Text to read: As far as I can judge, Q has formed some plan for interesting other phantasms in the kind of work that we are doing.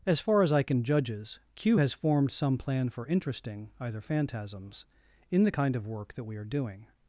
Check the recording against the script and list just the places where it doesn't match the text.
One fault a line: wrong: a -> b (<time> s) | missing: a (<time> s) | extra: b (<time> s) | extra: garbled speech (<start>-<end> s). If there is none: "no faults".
wrong: judge -> judges (0.8 s)
wrong: other -> either (3.8 s)